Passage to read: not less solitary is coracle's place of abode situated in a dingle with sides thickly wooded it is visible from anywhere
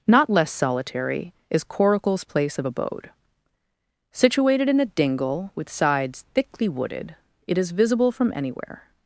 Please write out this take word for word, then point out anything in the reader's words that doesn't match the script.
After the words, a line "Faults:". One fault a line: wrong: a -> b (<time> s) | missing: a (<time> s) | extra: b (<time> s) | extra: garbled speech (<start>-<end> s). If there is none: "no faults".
not less solitary is coracle's place of abode situated in a dingle with sides thickly wooded it is visible from anywhere
Faults:
no faults